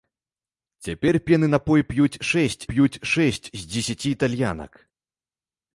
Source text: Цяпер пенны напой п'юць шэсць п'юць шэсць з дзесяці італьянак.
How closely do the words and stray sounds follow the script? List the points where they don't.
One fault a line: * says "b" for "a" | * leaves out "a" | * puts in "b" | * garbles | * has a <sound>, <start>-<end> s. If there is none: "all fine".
all fine